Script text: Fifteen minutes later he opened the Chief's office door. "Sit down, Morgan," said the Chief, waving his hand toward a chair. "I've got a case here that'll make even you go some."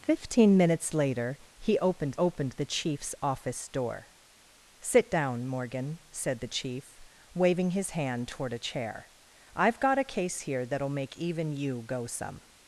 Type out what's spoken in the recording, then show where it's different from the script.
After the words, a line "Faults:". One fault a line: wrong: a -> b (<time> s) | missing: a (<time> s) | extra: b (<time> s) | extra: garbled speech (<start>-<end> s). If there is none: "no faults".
Fifteen minutes later he opened opened the Chief's office door. "Sit down, Morgan," said the Chief, waving his hand toward a chair. "I've got a case here that'll make even you go some."
Faults:
extra: opened (2.1 s)